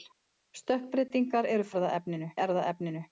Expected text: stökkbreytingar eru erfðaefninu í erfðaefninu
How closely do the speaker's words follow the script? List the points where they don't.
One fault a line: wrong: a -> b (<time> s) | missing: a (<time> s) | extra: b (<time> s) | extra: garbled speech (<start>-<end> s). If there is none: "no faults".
no faults